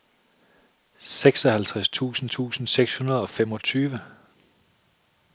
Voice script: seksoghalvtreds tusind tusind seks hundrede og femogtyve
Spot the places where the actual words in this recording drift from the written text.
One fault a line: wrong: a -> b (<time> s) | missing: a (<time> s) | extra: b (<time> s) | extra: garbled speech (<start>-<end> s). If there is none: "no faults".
no faults